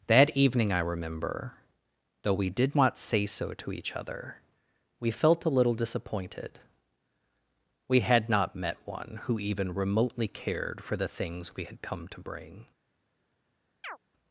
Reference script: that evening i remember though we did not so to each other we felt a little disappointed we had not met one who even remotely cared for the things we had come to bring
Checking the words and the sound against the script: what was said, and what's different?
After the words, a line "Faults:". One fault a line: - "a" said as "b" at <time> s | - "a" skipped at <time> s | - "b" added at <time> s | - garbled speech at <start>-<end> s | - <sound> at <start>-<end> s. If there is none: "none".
that evening i remember though we did not say so to each other we felt a little disappointed we had not met one who even remotely cared for the things we had come to bring
Faults:
- "say" added at 3.0 s
- chirp at 13.8-14.0 s